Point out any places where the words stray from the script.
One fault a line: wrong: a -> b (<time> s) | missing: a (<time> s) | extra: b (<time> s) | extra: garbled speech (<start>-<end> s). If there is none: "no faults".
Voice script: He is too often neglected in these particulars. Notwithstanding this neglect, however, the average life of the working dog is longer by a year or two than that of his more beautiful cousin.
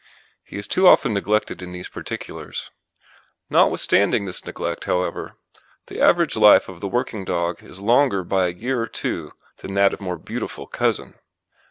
missing: his (10.0 s)